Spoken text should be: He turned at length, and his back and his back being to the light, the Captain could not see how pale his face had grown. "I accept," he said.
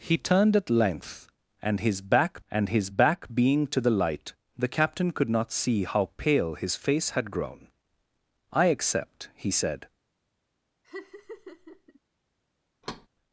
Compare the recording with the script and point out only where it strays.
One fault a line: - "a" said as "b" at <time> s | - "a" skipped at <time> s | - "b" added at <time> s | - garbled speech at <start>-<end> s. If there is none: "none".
none